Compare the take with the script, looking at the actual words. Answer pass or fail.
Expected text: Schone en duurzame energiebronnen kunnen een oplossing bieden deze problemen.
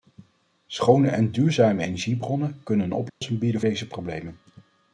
pass